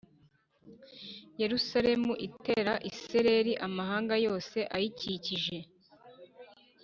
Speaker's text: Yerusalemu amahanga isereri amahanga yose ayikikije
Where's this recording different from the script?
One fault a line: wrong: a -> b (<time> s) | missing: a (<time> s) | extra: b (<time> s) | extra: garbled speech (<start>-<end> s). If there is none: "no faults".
wrong: amahanga -> itera (2.3 s)